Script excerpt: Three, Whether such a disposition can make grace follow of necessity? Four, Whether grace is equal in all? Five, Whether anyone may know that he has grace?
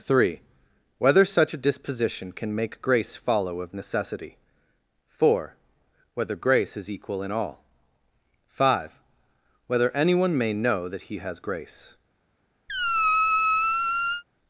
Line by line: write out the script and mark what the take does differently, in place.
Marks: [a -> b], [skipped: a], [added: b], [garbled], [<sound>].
Three, Whether such a disposition can make grace follow of necessity? Four, Whether grace is equal in all? Five, Whether anyone may know that he has grace? [squeak]